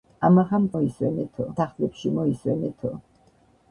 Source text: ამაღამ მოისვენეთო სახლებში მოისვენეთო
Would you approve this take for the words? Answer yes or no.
yes